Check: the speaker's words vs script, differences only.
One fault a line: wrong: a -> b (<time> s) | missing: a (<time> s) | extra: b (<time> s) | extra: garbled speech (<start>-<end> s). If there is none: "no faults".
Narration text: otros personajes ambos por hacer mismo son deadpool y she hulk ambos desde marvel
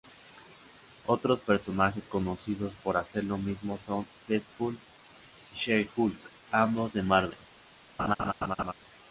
wrong: ambos -> conocidos (2.1 s)
extra: lo (3.2 s)
wrong: desde -> de (6.9 s)